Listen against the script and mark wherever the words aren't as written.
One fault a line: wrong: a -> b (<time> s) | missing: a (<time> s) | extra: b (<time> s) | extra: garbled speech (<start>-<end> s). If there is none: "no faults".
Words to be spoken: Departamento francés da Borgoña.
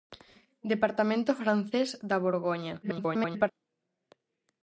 extra: garbled speech (2.8-3.5 s)